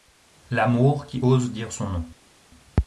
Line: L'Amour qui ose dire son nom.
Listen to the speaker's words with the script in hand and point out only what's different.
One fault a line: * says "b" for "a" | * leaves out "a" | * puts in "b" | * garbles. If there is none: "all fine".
all fine